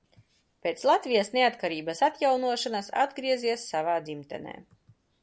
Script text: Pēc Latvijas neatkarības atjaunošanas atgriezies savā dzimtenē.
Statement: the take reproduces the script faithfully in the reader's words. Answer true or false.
true